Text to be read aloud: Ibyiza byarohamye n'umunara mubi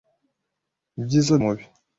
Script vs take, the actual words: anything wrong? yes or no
yes